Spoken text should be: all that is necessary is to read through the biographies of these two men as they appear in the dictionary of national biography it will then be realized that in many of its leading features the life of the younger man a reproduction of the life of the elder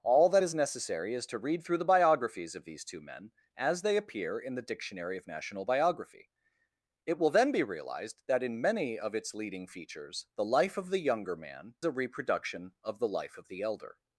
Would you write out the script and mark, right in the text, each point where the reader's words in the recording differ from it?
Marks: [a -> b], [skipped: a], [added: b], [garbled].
all that is necessary is to read through the biographies of these two men as they appear in the dictionary of national biography it will then be realized that in many of its leading features the life of the younger man a reproduction of the life of the elder